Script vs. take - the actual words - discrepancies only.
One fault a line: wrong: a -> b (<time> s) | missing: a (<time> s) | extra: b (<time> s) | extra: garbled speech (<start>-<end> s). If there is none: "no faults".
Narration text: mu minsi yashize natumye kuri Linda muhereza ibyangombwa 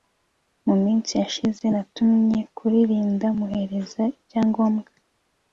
no faults